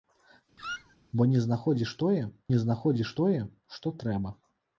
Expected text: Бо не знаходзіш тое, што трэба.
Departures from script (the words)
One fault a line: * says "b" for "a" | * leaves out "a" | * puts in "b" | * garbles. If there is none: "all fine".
* puts in "не знаходзіш тое"